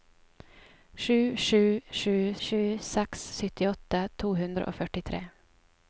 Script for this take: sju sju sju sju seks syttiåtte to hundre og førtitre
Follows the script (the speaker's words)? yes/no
yes